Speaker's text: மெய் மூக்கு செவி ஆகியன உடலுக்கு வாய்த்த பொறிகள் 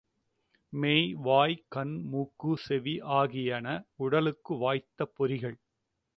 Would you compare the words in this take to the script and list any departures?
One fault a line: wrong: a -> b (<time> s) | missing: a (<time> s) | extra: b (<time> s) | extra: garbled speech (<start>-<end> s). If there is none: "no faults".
extra: வாய் கண் (1.1 s)